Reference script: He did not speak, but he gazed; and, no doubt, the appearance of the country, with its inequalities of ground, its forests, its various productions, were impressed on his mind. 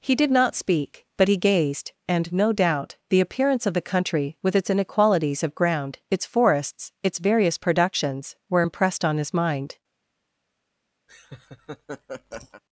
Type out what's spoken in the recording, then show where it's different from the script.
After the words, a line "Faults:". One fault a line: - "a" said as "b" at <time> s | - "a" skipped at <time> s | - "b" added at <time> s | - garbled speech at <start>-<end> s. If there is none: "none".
He did not speak, but he gazed; and, no doubt, the appearance of the country, with its inequalities of ground, its forests, its various productions, were impressed on his mind.
Faults:
none